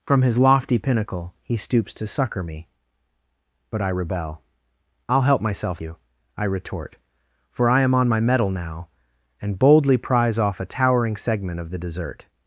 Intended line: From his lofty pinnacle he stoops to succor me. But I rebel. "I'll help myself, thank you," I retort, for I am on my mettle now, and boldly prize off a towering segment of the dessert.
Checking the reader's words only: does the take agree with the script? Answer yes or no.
no